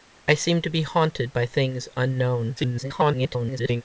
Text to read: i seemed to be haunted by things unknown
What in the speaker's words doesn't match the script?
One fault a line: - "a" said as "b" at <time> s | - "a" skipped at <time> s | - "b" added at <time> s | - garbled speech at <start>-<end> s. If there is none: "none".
- garbled speech at 2.6-3.8 s